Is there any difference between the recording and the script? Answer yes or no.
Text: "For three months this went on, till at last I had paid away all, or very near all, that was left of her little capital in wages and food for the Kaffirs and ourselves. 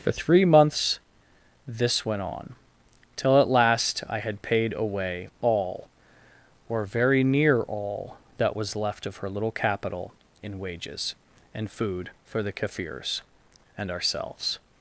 no